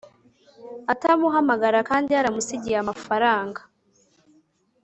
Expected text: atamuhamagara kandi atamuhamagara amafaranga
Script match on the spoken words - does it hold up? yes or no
no